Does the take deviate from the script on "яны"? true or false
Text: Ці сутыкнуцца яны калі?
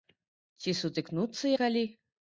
true